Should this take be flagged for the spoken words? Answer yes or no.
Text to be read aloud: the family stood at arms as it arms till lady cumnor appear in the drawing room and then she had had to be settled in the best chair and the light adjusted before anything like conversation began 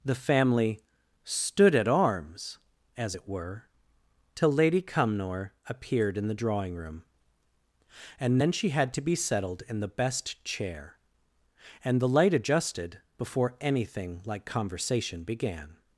yes